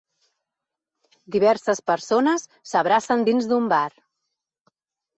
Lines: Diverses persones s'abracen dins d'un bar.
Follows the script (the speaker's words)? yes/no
yes